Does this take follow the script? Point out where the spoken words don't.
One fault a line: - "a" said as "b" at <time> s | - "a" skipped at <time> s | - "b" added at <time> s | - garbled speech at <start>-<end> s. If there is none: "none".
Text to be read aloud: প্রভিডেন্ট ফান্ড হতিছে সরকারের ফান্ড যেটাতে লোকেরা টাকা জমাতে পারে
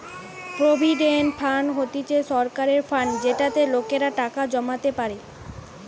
none